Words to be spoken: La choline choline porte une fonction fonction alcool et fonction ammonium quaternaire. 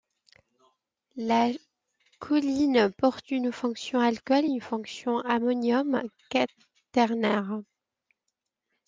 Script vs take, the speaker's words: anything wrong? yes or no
yes